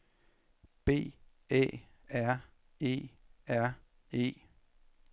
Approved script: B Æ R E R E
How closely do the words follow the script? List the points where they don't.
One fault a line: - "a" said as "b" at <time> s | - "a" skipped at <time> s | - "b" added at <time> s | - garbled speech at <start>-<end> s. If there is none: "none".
none